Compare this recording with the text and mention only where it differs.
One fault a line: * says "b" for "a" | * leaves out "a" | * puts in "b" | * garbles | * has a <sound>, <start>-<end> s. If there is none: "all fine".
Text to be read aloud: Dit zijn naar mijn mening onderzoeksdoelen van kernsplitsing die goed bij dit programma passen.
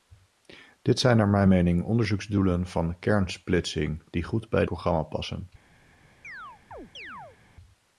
* leaves out "dit"
* has a chirp, 6.2-7.4 s